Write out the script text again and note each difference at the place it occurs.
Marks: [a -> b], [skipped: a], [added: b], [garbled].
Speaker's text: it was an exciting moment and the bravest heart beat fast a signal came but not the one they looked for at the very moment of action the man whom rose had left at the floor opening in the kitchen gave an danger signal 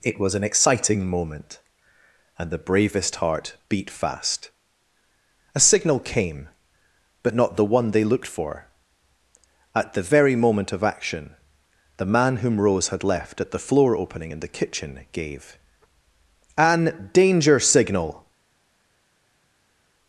it was an exciting moment and the bravest heart beat fast a signal came but not the one they looked for at the very moment of action the man whom rose had left at the floor opening in the kitchen gave an danger signal